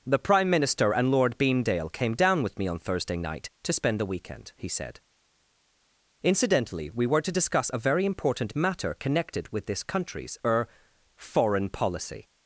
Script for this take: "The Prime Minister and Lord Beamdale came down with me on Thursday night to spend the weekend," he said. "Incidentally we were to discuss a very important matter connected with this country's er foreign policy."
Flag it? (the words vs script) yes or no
no